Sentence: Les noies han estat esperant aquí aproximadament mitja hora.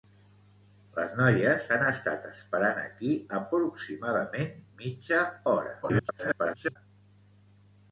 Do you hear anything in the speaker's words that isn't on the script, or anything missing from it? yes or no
yes